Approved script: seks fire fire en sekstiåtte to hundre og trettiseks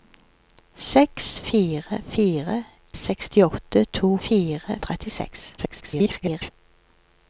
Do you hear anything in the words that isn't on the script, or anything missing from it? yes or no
yes